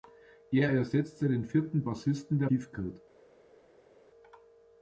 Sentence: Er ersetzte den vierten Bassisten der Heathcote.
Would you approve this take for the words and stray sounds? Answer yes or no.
yes